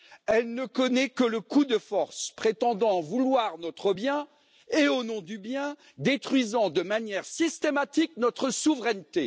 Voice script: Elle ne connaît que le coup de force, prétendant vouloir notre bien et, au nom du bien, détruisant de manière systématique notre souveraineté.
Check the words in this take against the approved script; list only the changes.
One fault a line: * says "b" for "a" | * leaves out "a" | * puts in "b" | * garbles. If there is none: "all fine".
all fine